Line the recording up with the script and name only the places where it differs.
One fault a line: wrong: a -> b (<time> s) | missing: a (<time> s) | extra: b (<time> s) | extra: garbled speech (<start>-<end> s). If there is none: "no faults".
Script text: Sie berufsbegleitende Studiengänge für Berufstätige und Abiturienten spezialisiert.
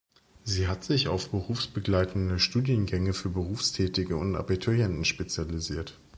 extra: hat sich auf (0.7 s)